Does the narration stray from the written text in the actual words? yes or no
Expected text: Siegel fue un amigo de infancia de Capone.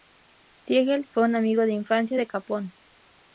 no